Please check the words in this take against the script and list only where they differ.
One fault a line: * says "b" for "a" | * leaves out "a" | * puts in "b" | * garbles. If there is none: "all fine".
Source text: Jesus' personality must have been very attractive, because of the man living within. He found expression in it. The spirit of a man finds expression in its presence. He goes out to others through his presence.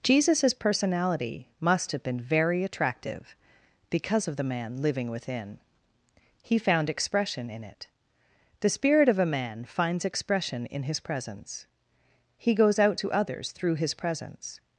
* says "his" for "its"